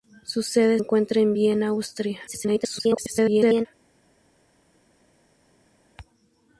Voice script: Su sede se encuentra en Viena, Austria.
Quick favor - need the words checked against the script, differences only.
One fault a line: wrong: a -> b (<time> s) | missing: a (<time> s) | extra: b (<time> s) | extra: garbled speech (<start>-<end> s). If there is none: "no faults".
missing: se (0.8 s)
extra: garbled speech (2.3-3.7 s)